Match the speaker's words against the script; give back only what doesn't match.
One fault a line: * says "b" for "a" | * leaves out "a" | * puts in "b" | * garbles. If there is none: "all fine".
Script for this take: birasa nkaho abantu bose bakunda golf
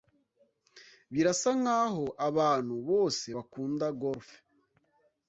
all fine